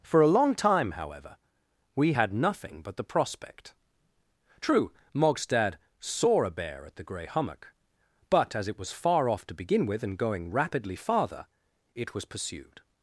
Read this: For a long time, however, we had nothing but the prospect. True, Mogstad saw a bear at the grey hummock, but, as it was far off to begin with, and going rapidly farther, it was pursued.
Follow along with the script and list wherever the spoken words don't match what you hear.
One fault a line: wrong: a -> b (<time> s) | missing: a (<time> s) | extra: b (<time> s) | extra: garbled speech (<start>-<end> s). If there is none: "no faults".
no faults